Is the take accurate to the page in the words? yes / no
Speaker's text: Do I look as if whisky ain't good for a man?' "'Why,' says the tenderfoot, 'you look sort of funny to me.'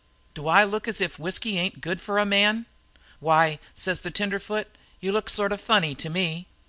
yes